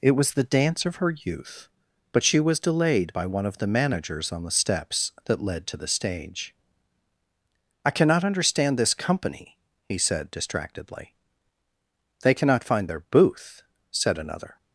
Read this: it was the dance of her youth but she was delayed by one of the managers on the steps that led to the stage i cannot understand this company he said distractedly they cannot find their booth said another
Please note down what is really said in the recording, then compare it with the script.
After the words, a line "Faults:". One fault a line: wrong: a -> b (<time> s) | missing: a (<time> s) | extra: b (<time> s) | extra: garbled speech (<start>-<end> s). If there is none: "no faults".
it was the dance of her youth but she was delayed by one of the managers on the steps that led to the stage i cannot understand this company he said distractedly they cannot find their booth said another
Faults:
no faults